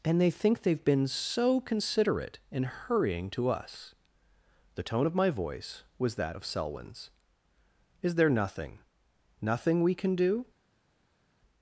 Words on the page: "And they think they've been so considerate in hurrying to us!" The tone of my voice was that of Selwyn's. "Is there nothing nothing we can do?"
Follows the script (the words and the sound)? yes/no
yes